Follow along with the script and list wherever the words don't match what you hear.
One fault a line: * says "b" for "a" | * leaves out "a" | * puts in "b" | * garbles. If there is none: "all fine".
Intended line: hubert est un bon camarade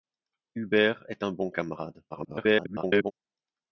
* garbles